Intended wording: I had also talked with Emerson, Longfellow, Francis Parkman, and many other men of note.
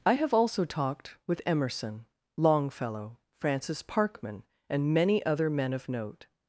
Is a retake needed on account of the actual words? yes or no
yes